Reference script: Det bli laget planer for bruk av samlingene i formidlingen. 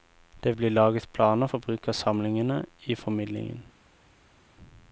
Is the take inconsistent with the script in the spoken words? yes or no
no